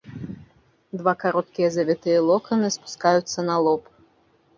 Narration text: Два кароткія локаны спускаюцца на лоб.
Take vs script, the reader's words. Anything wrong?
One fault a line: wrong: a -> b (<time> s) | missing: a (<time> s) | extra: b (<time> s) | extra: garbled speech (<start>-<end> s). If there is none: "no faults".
extra: завітыя (1.8 s)